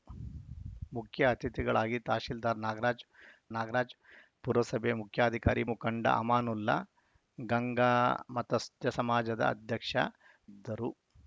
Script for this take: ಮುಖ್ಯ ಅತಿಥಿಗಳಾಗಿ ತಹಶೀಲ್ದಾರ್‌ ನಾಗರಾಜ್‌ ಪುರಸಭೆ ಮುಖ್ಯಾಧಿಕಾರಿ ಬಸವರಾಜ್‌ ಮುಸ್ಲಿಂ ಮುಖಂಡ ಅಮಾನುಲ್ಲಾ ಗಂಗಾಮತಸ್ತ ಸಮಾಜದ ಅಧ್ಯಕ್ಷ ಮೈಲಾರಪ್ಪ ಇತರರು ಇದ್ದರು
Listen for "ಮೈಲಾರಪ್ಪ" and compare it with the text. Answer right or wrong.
wrong